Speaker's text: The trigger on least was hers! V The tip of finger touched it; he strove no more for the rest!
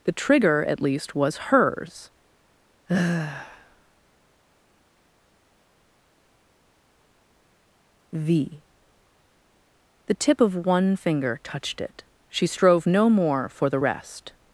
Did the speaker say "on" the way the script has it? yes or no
no